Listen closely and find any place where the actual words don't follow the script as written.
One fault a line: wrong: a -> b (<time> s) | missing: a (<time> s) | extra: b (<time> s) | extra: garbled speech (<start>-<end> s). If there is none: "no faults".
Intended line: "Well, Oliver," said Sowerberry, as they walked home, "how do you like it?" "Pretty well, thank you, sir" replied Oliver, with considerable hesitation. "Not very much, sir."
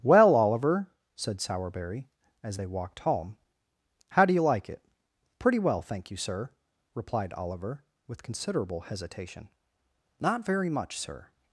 no faults